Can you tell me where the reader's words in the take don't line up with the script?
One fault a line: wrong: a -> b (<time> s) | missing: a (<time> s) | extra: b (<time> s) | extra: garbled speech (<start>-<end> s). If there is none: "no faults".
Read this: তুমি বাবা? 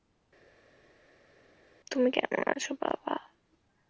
extra: কেমন আছো (2.1 s)